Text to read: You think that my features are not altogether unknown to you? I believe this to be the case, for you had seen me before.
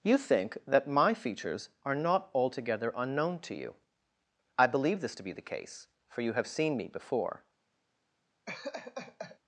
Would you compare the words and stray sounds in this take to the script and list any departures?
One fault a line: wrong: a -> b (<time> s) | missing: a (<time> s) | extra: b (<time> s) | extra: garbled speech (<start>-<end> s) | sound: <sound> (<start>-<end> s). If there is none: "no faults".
wrong: had -> have (6.3 s)
sound: laugh (8.5-9.4 s)